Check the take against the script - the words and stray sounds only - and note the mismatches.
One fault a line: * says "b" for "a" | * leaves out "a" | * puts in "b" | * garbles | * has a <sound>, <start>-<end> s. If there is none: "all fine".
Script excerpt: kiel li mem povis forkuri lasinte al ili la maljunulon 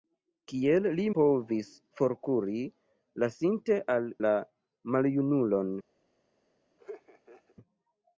* leaves out "mem"
* leaves out "ili"
* has a laugh, 6.8-7.6 s